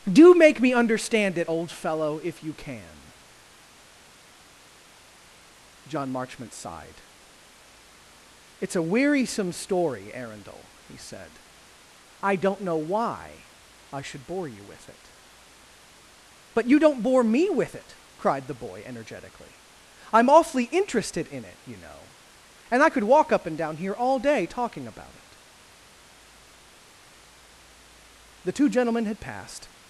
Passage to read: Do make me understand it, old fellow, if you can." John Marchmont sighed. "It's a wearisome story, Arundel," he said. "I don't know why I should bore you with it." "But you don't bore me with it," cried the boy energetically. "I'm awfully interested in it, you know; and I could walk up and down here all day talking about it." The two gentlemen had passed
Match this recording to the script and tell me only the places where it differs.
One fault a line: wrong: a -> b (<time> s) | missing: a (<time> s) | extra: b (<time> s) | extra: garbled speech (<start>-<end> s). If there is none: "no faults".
no faults